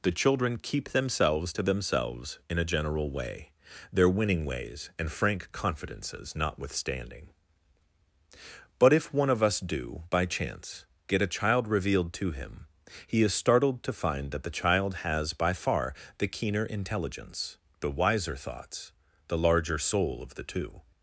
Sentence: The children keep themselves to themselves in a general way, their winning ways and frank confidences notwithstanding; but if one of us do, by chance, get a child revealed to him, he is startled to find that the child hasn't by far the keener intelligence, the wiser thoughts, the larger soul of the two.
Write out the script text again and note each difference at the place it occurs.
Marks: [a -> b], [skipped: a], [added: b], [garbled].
The children keep themselves to themselves in a general way, their winning ways and frank confidences notwithstanding; but if one of us do, by chance, get a child revealed to him, he is startled to find that the child [hasn't -> has] by far the keener intelligence, the wiser thoughts, the larger soul of the two.